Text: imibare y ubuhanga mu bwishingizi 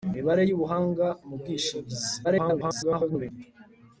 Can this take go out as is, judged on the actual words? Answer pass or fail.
fail